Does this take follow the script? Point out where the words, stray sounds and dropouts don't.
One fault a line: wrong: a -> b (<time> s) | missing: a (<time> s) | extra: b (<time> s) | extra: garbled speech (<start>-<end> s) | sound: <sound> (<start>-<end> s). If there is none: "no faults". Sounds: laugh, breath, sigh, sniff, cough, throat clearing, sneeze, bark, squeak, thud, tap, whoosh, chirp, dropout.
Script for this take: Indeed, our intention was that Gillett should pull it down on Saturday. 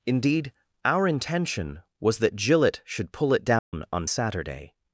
sound: dropout (3.6-3.7 s)